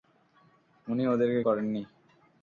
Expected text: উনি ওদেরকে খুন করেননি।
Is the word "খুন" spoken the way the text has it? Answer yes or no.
no